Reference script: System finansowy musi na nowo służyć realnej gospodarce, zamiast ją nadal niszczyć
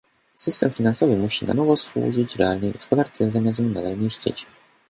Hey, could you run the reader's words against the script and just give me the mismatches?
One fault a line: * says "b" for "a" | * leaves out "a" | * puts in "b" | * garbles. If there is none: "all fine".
all fine